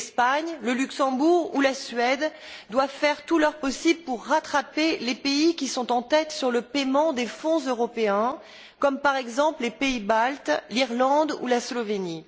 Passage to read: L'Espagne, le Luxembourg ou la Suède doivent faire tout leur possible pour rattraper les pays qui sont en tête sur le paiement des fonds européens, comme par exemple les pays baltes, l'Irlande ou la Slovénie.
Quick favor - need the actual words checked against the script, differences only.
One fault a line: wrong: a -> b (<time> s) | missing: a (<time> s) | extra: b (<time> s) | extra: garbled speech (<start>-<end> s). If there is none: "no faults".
no faults